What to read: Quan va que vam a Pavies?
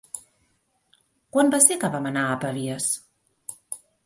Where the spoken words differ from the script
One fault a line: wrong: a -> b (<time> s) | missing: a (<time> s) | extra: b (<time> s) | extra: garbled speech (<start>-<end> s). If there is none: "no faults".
extra: ser (1.7 s)
extra: anar (2.1 s)